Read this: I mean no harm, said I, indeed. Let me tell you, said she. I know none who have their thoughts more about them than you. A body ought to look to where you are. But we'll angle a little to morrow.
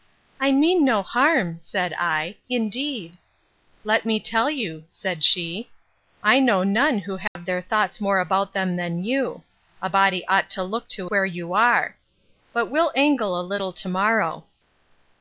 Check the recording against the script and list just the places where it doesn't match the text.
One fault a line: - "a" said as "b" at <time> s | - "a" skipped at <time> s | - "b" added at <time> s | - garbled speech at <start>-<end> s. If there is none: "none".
none